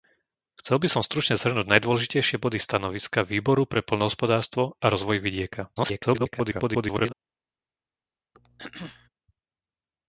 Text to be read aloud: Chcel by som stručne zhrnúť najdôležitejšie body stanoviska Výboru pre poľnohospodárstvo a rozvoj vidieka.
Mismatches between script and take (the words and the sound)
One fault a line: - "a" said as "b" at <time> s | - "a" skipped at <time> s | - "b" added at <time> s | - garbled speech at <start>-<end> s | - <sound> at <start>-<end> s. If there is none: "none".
- garbled speech at 5.8-7.1 s
- throat clearing at 8.3-9.1 s